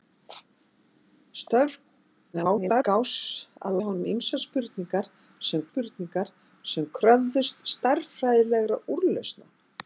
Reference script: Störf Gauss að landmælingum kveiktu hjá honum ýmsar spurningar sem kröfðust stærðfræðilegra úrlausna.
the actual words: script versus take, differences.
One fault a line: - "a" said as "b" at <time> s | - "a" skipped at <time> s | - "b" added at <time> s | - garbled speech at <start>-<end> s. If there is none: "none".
- garbled speech at 2.3-2.8 s
- "landmælingum kveiktu" skipped at 3.8 s
- "spurningar sem" added at 5.7 s